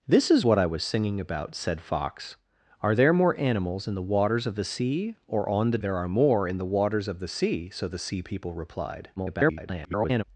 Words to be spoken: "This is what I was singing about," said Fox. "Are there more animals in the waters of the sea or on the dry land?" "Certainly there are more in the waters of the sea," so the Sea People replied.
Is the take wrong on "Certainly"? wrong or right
wrong